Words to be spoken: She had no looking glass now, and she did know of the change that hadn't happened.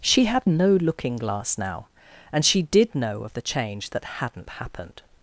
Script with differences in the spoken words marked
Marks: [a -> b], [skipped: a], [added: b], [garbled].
She had no looking glass now, and she did know of the change that hadn't happened.